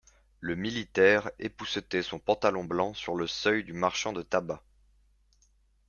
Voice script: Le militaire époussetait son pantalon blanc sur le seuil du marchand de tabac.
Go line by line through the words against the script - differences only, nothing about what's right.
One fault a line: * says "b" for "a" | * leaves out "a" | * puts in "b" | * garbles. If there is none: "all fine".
all fine